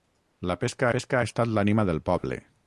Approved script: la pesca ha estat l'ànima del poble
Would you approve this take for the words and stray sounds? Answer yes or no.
no